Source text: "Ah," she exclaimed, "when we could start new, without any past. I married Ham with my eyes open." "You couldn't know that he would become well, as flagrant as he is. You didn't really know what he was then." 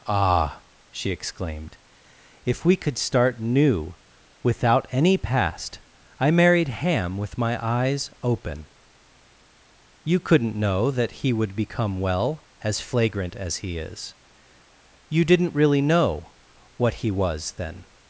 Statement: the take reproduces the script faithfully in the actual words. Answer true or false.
false